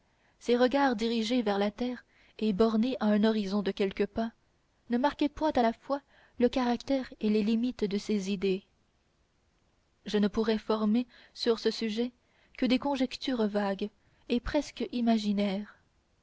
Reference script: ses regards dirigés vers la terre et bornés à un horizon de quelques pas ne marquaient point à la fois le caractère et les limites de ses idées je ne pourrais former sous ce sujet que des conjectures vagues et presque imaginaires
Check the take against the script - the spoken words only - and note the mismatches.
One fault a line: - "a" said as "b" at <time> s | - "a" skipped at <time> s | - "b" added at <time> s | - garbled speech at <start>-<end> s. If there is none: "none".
- "sous" said as "sur" at 11.3 s